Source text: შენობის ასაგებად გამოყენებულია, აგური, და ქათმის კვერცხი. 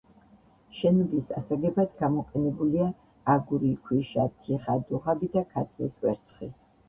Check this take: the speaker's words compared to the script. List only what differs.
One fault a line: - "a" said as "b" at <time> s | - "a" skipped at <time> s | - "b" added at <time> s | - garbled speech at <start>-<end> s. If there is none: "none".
- "ქვიშა თიხა დუღაბი" added at 3.9 s